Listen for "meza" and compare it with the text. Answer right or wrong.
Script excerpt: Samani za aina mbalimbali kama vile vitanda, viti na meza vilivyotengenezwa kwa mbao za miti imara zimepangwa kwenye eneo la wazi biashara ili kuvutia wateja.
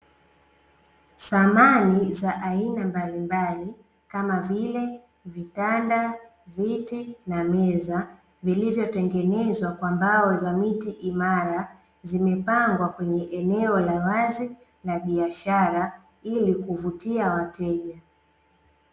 right